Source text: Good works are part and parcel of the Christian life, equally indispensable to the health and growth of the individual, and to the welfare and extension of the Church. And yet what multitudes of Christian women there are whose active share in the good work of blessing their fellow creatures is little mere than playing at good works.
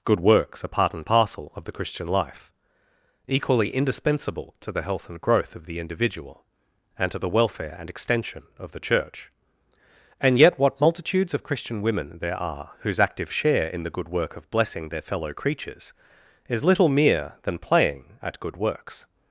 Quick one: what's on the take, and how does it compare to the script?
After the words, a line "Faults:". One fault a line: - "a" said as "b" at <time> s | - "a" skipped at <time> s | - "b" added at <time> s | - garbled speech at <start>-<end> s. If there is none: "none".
Good works are part and parcel of the Christian life, equally indispensable to the health and growth of the individual, and to the welfare and extension of the Church. And yet what multitudes of Christian women there are whose active share in the good work of blessing their fellow creatures is little mere than playing at good works.
Faults:
none